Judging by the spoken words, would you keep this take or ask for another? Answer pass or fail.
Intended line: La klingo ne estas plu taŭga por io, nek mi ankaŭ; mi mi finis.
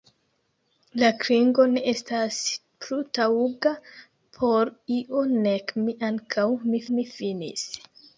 pass